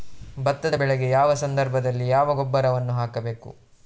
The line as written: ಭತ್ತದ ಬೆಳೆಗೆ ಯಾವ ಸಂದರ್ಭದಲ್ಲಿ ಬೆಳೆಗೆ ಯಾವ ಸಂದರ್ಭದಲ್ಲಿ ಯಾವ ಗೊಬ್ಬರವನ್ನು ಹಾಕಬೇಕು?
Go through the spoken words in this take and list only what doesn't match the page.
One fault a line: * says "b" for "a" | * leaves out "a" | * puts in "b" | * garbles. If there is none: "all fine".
* leaves out "ಬೆಳೆಗೆ ಯಾವ ಸಂದರ್ಭದಲ್ಲಿ"